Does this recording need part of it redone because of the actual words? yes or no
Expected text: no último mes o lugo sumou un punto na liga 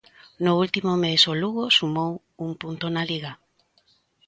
no